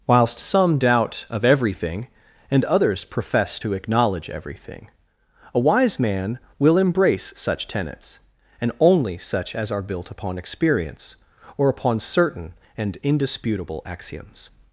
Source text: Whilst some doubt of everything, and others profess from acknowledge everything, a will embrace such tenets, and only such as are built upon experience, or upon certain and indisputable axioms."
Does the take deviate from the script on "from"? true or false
true